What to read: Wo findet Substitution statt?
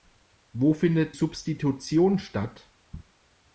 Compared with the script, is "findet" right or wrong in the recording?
right